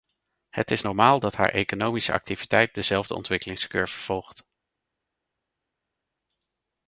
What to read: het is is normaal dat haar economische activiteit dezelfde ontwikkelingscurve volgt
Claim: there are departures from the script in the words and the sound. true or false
true